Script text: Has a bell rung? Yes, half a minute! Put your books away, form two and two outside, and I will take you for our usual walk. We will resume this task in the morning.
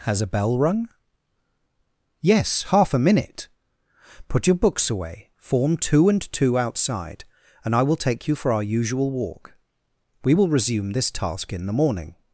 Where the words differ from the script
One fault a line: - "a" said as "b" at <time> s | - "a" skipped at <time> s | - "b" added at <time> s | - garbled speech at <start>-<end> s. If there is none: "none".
none